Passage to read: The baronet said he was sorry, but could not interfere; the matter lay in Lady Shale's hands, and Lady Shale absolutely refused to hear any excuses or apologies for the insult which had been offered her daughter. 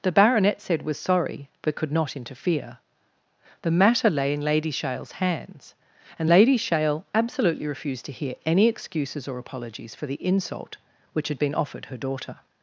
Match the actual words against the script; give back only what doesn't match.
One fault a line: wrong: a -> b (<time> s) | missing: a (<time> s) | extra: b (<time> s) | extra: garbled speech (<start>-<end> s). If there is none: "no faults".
missing: he (0.8 s)